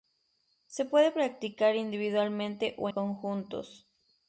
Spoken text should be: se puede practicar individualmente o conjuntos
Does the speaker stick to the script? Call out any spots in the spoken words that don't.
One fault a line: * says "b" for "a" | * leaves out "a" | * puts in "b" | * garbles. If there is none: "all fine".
all fine